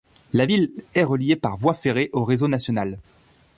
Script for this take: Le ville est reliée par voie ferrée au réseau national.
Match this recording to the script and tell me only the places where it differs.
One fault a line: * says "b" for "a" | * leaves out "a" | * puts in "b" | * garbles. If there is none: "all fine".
* says "La" for "Le"